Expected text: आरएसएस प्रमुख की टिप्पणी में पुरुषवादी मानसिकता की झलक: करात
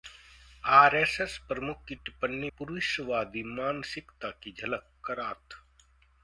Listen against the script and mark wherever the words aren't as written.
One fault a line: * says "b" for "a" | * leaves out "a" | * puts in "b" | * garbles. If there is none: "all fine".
* leaves out "में"